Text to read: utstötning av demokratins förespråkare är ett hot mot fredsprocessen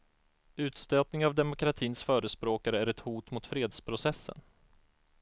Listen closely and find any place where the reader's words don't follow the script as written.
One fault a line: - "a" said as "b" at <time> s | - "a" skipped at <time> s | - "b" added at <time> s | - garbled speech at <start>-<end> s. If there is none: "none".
none